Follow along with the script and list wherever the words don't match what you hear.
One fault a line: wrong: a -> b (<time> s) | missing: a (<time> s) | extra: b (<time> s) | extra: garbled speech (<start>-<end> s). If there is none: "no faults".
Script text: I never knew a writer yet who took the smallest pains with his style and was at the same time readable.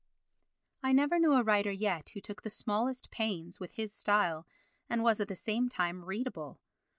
no faults